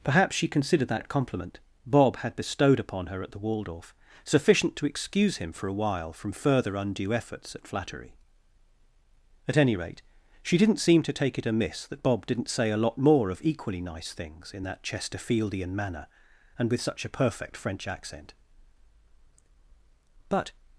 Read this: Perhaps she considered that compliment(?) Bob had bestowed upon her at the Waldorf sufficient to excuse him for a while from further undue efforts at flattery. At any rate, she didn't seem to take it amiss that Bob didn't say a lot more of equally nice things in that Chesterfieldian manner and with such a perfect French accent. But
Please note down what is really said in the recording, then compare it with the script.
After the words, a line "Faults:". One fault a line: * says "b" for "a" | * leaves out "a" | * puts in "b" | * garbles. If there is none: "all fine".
Perhaps she considered that compliment(?) Bob had bestowed upon her at the Waldorf sufficient to excuse him for a while from further undue efforts at flattery. At any rate, she didn't seem to take it amiss that Bob didn't say a lot more of equally nice things in that Chesterfieldian manner and with such a perfect French accent. But
Faults:
all fine